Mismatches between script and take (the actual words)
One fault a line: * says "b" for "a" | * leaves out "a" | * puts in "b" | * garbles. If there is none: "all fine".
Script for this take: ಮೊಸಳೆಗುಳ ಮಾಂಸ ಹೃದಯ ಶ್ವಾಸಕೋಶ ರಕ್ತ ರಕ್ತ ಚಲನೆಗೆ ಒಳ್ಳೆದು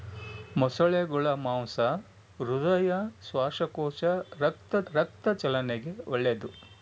all fine